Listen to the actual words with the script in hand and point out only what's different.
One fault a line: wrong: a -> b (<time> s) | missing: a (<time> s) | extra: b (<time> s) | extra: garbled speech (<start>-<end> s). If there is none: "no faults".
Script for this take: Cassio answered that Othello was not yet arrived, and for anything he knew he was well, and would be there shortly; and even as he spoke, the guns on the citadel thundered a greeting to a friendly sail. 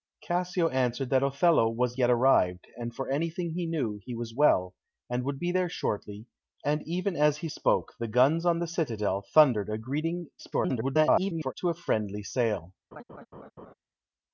missing: not (2.0 s)
extra: garbled speech (10.4-11.5 s)